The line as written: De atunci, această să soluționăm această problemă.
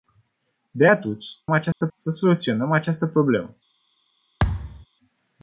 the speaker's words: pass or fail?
pass